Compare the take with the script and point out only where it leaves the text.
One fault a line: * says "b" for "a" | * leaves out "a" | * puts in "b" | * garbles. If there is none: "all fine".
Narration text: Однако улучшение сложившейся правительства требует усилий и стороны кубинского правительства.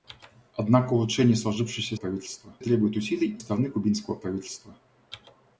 all fine